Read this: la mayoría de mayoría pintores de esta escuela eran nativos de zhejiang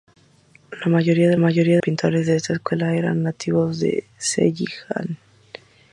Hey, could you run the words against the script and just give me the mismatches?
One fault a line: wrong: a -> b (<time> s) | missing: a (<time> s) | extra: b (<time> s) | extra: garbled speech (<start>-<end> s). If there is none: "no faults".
no faults